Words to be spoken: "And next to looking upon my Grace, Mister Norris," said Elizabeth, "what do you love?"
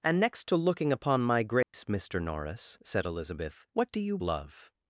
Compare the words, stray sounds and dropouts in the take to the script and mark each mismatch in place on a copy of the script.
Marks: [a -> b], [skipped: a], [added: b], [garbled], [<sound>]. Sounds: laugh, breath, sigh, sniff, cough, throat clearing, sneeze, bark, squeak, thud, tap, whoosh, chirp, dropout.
"And next to looking upon my Grace, [dropout] Mister Norris," said Elizabeth, "what do you love?"